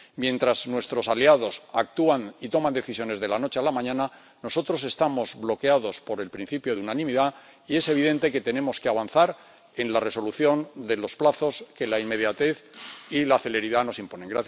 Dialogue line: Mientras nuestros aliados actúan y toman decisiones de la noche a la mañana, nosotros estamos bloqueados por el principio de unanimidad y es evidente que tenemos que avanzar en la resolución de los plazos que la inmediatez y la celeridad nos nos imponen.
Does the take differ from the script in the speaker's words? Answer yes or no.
yes